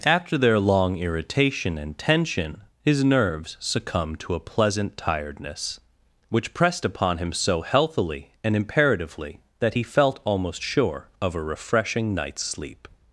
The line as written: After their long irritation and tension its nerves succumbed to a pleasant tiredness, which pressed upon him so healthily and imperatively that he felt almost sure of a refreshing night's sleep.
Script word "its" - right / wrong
wrong